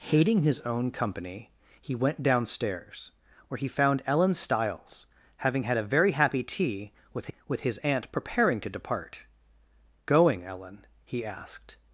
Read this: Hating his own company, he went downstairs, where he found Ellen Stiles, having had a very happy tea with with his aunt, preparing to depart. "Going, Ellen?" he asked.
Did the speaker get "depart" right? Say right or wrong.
right